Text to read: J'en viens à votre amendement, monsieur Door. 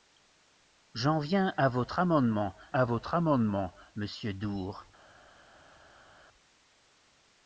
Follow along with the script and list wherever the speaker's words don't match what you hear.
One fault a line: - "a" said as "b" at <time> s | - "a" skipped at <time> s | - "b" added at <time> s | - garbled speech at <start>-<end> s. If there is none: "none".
- "à votre amendement" added at 2.7 s